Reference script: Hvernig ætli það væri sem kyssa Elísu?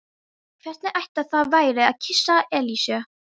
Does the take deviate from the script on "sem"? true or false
true